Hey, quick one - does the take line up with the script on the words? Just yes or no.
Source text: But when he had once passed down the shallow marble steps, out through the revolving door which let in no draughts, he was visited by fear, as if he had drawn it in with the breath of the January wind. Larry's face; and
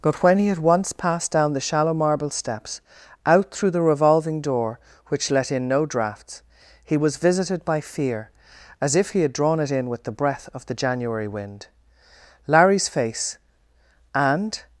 yes